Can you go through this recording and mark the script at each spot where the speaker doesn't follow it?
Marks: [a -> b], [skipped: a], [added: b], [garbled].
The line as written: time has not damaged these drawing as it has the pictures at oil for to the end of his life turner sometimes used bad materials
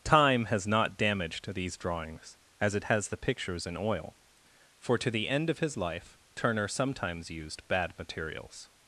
time has not damaged these [drawing -> drawings] as it has the pictures [at -> in] oil for to the end of his life turner sometimes used bad materials